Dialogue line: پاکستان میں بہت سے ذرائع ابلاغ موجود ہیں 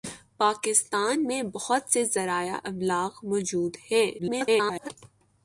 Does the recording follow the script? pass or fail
fail